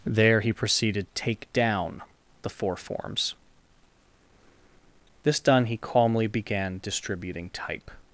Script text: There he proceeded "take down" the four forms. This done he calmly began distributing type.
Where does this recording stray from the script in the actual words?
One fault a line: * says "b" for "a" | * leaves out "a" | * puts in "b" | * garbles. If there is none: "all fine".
all fine